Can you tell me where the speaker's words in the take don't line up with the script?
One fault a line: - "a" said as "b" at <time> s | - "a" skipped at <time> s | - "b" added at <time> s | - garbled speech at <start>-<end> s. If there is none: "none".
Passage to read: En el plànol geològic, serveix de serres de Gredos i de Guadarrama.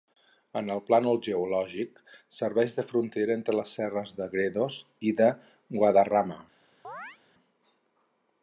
- "frontera entre les" added at 2.9 s